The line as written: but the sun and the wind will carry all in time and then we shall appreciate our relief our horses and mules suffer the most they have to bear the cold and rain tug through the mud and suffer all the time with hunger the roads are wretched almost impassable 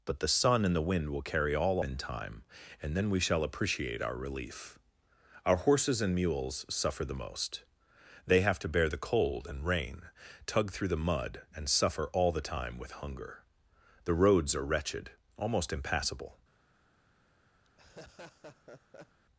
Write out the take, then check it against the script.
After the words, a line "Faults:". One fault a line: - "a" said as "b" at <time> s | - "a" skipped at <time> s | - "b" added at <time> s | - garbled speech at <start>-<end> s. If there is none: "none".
but the sun and the wind will carry all in time and then we shall appreciate our relief our horses and mules suffer the most they have to bear the cold and rain tug through the mud and suffer all the time with hunger the roads are wretched almost impassable
Faults:
none